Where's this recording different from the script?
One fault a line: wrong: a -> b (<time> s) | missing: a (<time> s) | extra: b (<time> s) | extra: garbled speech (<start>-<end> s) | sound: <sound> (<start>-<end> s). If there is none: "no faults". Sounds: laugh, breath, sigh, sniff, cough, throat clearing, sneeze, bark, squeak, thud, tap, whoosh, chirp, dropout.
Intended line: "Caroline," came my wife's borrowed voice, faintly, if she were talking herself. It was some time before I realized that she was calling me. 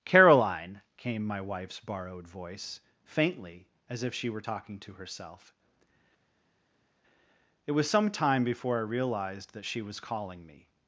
extra: as (3.9 s)
extra: to (4.8 s)